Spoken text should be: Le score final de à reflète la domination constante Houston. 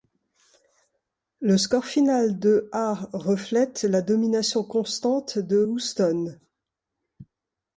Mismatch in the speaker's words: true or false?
true